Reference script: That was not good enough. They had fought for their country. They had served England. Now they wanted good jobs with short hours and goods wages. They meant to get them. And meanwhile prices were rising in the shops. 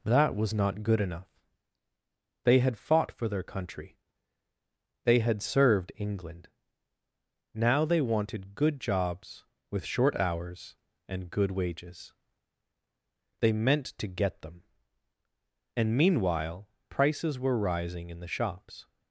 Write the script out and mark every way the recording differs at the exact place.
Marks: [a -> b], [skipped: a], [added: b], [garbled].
That was not good enough. They had fought for their country. They had served England. Now they wanted good jobs with short hours and [goods -> good] wages. They meant to get them. And meanwhile prices were rising in the shops.